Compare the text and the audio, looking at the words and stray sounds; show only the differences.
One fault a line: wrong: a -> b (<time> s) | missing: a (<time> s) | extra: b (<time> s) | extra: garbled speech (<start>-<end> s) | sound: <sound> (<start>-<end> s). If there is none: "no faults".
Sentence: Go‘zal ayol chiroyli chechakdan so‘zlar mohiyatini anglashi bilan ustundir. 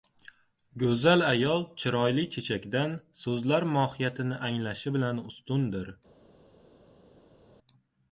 no faults